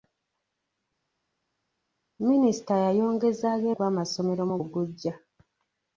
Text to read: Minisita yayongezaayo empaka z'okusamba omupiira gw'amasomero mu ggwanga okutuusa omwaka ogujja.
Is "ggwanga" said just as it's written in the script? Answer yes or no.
no